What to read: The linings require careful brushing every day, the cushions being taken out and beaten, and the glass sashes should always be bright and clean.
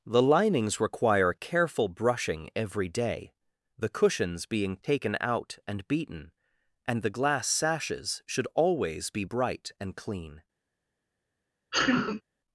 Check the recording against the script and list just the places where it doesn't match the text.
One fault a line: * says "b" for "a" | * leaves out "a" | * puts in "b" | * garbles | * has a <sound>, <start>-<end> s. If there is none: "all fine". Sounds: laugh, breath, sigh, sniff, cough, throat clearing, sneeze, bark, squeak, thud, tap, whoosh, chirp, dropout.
* has a sneeze, 11.7-12.2 s